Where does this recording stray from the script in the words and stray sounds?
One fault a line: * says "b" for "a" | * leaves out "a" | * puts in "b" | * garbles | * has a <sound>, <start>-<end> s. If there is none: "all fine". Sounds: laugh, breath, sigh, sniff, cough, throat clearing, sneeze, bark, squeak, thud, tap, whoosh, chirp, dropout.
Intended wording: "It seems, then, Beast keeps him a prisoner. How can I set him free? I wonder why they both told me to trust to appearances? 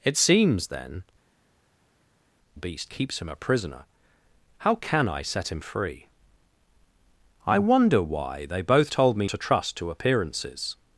all fine